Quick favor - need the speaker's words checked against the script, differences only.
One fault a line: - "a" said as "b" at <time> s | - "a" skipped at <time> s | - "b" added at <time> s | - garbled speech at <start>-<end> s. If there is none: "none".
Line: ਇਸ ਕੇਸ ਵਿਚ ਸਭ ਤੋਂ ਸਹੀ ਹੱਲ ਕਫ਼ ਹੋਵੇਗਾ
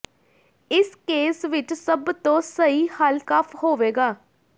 none